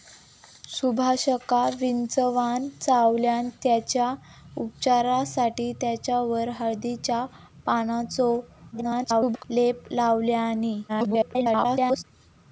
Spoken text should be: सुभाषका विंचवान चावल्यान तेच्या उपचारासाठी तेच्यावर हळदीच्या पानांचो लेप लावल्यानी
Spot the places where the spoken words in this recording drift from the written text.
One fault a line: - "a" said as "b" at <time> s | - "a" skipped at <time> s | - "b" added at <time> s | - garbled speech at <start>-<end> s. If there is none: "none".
- garbled speech at 8.7-9.4 s
- garbled speech at 10.9-12.0 s